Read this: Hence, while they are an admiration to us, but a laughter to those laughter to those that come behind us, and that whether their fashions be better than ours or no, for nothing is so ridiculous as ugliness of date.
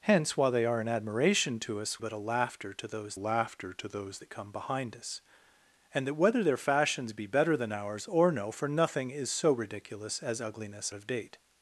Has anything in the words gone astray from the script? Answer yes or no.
no